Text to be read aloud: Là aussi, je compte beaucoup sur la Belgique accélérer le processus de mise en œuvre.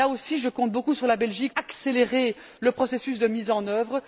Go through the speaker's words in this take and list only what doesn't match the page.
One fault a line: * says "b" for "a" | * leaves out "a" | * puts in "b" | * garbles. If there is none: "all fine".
all fine